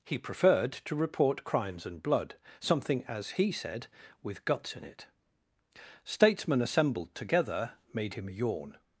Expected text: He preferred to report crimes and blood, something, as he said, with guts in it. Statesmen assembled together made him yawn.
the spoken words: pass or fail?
pass